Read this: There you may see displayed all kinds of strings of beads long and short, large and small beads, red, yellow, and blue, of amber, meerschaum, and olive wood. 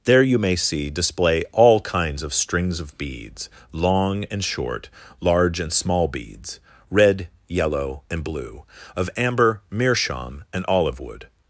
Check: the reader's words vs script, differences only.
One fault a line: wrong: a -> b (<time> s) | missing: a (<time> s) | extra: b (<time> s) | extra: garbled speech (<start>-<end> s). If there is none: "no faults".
wrong: displayed -> display (0.9 s)